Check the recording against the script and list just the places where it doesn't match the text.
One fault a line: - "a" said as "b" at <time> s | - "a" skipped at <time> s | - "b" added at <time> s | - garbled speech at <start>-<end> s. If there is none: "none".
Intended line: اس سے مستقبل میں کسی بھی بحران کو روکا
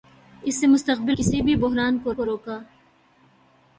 - "میں" skipped at 1.2 s
- "کو" added at 2.1 s